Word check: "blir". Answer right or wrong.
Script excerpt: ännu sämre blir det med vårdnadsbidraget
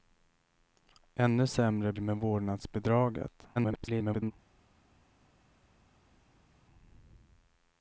wrong